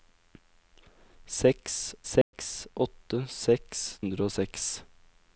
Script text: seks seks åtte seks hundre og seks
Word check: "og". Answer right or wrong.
right